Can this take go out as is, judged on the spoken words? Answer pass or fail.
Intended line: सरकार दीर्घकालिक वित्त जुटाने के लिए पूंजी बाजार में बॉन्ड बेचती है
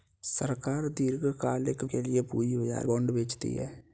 fail